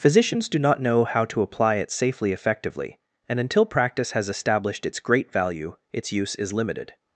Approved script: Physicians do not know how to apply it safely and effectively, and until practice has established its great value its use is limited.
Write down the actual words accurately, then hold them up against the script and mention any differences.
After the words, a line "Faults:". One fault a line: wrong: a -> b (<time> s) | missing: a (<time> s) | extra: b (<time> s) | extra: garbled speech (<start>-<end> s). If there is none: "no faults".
Physicians do not know how to apply it safely effectively, and until practice has established its great value its use is limited.
Faults:
missing: and (2.3 s)